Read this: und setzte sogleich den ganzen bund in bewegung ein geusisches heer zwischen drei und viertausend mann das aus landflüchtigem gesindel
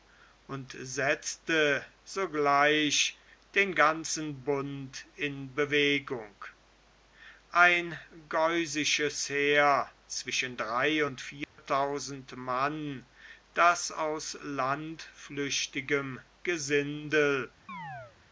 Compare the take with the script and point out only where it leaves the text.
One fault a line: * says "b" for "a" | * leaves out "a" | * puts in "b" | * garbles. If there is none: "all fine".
all fine